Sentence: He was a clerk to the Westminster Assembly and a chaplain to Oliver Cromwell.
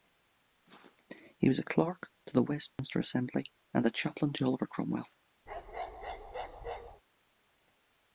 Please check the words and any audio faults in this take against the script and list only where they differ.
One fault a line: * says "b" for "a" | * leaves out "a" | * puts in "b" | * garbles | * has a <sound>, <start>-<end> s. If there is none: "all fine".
* has a dropout, 2.7-2.8 s
* has a bark, 5.5-7.0 s